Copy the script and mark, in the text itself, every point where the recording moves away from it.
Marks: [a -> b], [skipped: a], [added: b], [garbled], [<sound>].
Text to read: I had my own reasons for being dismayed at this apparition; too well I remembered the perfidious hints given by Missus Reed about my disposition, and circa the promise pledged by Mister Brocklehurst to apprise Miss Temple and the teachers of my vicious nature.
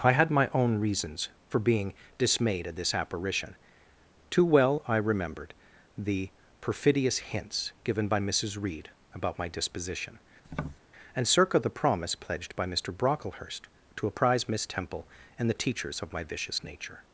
I had my own reasons for being dismayed at this apparition; too well I remembered the perfidious hints given by Missus Reed about my disposition, [tap] and circa the promise pledged by Mister Brocklehurst to apprise Miss Temple and the teachers of my vicious nature.